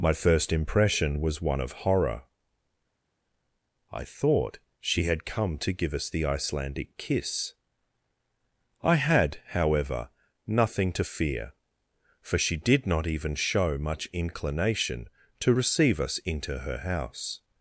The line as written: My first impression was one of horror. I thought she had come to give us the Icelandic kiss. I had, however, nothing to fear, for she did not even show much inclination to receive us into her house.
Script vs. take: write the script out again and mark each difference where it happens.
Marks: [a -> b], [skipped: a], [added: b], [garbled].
My first impression was one of horror. I thought she had come to give us the Icelandic kiss. I had, however, nothing to fear, for she did not even show much inclination to receive us into her house.